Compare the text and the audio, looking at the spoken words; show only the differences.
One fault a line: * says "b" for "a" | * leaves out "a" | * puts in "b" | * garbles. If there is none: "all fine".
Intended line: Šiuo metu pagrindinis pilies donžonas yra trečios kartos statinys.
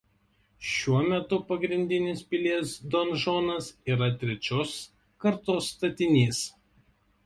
all fine